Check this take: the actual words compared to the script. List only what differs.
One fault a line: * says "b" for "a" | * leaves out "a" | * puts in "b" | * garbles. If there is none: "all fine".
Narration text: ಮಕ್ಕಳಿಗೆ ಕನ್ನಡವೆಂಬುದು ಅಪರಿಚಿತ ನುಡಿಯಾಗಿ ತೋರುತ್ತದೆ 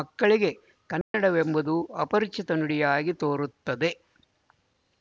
all fine